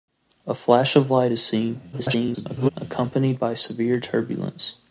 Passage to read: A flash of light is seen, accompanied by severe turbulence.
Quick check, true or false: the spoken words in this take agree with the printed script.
false